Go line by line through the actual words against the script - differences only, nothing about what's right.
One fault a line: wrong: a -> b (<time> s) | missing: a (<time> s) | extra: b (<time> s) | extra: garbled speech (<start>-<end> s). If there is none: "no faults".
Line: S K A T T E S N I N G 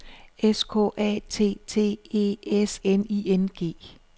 no faults